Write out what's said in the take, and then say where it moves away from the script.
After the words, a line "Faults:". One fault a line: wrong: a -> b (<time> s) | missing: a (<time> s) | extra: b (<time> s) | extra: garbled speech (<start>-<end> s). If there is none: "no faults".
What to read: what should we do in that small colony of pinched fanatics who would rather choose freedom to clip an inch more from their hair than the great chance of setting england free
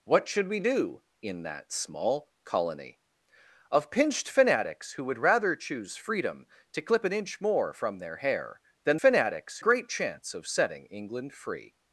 what should we do in that small colony of pinched fanatics who would rather choose freedom to clip an inch more from their hair than fanatics great chance of setting england free
Faults:
wrong: the -> fanatics (9.0 s)